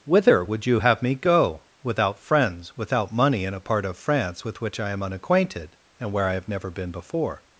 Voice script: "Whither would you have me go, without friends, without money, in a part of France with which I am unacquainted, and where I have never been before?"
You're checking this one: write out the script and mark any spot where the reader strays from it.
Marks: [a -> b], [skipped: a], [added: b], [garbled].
"Whither would you have me go, without friends, without money, in a part of France with which I am unacquainted, and where I have never been before?"